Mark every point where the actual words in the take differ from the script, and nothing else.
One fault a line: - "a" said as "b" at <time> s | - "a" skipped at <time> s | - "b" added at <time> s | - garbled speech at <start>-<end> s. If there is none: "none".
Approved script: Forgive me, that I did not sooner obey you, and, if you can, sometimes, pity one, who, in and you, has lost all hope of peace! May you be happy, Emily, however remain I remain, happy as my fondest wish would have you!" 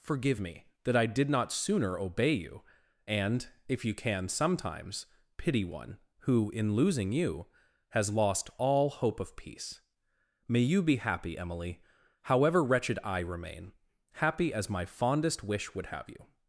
- "and" said as "losing" at 6.7 s
- "remain" said as "wretched" at 12.6 s